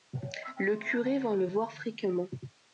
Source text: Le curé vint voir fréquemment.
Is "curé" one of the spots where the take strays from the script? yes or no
no